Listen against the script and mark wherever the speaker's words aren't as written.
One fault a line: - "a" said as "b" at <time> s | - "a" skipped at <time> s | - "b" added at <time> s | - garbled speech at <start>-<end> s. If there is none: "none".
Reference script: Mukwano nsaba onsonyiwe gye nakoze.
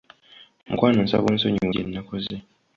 none